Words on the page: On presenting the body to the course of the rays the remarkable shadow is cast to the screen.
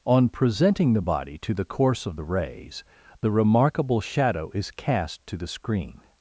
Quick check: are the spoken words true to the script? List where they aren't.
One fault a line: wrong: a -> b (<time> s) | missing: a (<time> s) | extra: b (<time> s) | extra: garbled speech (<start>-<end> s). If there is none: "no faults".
no faults